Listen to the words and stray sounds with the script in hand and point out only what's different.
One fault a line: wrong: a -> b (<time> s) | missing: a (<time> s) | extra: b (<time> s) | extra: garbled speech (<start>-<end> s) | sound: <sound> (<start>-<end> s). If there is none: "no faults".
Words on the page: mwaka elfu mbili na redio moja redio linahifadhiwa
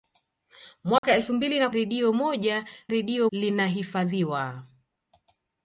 sound: dropout (1.0-1.0 s)